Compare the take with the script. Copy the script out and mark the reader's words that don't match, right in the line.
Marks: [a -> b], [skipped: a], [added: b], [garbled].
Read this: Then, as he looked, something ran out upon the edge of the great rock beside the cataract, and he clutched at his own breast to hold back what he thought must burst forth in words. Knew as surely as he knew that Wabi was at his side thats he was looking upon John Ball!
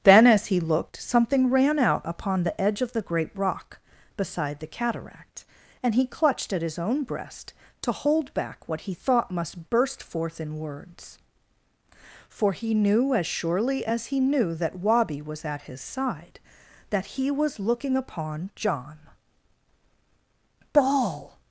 Then, as he looked, something ran out upon the edge of the great rock beside the cataract, and he clutched at his own breast to hold back what he thought must burst forth in words. [added: For he] Knew as surely as he knew that Wabi was at his side [thats -> that] he was looking upon John Ball!